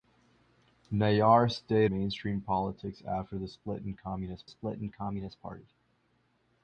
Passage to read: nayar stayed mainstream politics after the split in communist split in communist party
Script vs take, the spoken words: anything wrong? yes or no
no